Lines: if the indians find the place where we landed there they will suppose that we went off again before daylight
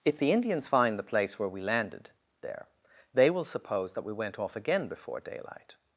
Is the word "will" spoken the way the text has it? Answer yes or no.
yes